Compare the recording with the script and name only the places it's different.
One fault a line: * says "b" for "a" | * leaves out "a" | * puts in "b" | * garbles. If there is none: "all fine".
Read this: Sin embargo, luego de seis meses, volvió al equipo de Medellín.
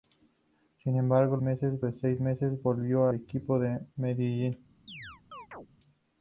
* says "meses" for "luego"
* leaves out "al"